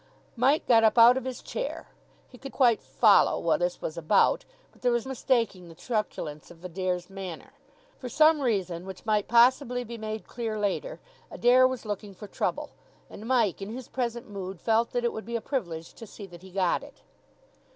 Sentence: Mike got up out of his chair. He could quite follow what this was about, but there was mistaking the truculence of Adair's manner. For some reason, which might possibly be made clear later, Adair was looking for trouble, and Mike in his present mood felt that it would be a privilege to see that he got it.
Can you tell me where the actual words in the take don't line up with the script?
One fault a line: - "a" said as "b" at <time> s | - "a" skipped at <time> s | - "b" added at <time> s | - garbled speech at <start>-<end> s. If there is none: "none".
none